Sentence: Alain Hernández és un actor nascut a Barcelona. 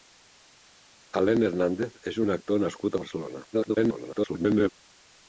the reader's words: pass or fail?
fail